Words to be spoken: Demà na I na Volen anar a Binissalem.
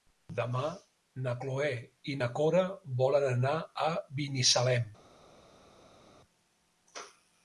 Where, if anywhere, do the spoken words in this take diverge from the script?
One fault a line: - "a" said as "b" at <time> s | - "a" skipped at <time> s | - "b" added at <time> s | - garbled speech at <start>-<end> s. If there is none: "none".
- "Cloè" added at 1.4 s
- "Cora" added at 2.4 s